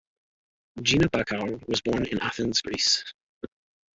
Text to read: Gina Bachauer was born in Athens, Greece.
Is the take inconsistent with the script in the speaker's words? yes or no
no